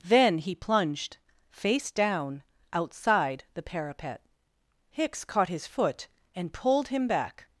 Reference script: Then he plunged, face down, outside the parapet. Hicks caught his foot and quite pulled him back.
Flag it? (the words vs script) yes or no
yes